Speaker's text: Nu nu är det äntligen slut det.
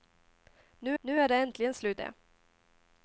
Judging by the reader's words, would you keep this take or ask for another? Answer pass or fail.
pass